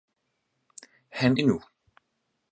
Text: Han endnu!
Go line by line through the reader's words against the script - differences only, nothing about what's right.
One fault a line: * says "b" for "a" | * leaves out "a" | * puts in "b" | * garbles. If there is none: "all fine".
all fine